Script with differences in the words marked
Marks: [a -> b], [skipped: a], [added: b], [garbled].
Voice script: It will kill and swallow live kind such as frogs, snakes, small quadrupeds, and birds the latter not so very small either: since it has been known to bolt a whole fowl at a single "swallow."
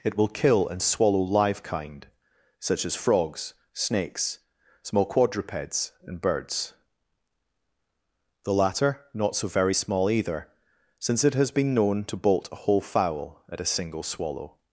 It will kill and swallow live kind such as frogs, snakes, small quadrupeds, and birds the latter not so very small either: since it has been known to bolt a whole fowl at a single "swallow."